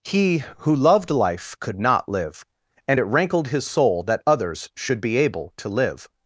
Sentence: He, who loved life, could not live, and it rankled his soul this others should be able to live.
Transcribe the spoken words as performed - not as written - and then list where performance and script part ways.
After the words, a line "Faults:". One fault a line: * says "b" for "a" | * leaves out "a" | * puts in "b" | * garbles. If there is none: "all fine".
He, who loved life, could not live, and it rankled his soul that others should be able to live.
Faults:
* says "that" for "this"